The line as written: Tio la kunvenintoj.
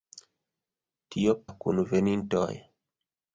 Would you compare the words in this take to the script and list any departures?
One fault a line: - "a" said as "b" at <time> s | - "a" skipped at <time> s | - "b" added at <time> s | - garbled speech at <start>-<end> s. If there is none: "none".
none